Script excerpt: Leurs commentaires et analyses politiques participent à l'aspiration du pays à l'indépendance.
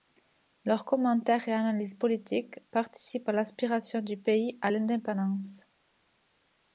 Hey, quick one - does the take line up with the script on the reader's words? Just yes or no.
yes